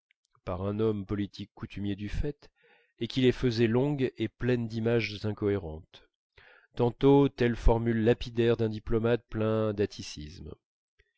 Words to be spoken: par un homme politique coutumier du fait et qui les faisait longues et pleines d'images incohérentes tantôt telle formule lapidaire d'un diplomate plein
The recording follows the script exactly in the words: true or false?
true